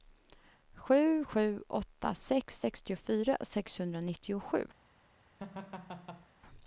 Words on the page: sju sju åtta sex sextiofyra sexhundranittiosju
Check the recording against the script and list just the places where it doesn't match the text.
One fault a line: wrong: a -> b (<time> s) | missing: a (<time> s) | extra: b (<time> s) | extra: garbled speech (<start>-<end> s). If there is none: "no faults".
no faults